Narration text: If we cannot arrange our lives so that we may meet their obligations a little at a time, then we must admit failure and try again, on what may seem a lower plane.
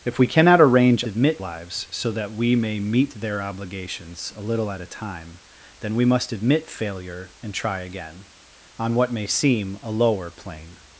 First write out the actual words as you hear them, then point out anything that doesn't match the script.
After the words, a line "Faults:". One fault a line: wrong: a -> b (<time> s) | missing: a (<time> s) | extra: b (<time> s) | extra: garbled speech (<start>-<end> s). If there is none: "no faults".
If we cannot arrange admit lives so that we may meet their obligations a little at a time, then we must admit failure and try again, on what may seem a lower plane.
Faults:
wrong: our -> admit (1.1 s)